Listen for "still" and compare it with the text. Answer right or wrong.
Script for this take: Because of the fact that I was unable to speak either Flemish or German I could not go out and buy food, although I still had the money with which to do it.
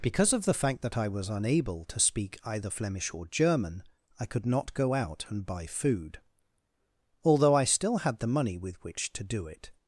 right